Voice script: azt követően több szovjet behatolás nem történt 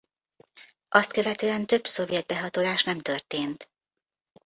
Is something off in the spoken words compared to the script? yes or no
no